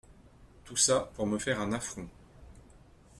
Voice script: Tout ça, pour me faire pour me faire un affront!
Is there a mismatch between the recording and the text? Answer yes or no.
yes